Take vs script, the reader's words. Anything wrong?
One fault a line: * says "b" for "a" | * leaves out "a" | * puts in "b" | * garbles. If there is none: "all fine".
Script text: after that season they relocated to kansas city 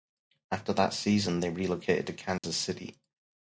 all fine